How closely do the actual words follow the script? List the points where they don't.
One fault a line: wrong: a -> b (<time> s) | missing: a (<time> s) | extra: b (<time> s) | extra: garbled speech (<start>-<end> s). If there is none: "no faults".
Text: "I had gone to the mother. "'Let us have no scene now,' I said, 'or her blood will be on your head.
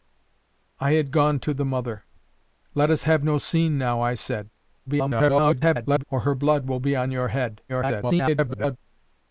extra: garbled speech (4.9-6.0 s)
extra: garbled speech (7.7-8.8 s)